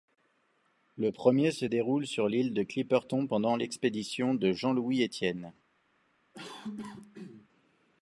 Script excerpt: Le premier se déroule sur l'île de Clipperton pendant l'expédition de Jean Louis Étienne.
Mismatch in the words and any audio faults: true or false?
true